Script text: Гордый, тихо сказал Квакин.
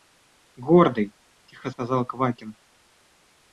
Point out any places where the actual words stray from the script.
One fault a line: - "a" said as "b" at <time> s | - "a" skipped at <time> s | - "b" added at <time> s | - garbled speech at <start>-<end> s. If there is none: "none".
none